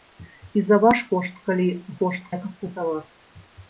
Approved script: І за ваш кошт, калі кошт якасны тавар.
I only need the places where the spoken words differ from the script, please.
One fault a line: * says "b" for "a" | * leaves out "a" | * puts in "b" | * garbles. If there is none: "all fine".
all fine